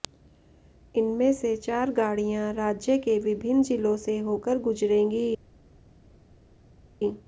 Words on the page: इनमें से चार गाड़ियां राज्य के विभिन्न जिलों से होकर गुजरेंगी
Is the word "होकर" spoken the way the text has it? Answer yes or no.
yes